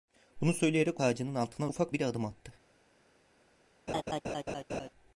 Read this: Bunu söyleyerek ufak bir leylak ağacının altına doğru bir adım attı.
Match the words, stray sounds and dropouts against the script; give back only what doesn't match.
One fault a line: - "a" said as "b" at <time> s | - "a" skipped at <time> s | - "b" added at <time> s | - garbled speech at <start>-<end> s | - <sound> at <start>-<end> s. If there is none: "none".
- "ufak bir leylak" skipped at 1.0 s
- "doğru" said as "ufak" at 1.7 s
- laugh at 3.9-4.9 s